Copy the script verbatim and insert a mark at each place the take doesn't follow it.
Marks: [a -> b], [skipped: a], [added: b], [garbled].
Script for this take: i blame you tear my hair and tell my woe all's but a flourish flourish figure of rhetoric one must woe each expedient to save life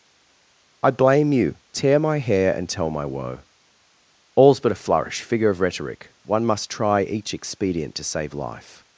i blame you tear my hair and tell my woe all's but a flourish [skipped: flourish] figure of rhetoric one must [woe -> try] each expedient to save life